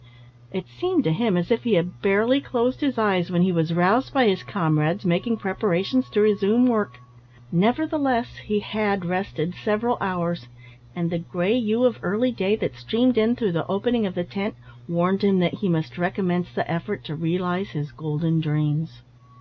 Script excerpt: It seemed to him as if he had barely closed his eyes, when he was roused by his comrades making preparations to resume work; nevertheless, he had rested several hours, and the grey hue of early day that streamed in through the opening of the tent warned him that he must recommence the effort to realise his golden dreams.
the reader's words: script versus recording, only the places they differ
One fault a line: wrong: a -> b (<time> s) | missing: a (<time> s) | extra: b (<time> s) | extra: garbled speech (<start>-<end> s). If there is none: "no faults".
no faults